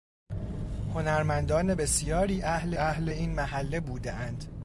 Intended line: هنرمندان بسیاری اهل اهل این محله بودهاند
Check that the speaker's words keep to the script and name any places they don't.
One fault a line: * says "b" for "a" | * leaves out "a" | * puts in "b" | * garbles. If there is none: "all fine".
all fine